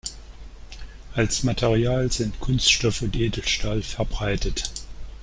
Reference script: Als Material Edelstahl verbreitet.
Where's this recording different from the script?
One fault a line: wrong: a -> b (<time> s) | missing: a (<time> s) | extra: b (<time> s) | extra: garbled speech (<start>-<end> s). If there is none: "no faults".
extra: sind Kunststoff und (2.1 s)